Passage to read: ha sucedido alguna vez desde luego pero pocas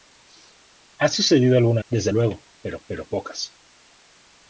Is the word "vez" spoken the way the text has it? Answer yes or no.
no